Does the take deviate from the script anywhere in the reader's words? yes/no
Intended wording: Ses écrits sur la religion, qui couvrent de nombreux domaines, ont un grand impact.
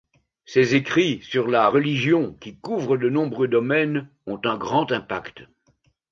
no